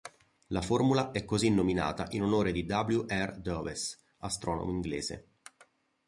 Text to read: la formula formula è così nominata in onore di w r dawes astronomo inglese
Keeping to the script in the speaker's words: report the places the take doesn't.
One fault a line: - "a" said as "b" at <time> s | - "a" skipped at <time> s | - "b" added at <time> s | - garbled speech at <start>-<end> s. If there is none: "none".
- "formula" skipped at 1.1 s